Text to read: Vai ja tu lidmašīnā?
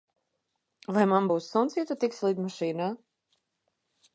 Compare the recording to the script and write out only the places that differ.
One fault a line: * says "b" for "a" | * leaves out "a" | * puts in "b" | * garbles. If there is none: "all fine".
* puts in "man būs suns"
* puts in "tiksi"